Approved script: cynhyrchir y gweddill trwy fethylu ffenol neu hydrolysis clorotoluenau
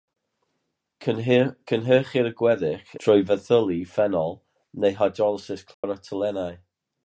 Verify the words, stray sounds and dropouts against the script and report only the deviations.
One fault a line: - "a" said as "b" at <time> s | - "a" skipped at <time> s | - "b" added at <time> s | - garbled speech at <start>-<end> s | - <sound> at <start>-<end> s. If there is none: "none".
- dropout at 5.7-5.8 s